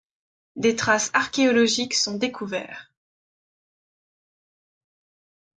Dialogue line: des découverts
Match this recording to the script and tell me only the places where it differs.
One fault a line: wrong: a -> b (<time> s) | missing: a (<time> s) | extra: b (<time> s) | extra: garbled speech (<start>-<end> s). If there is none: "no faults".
extra: traces archéologiques sont (0.8 s)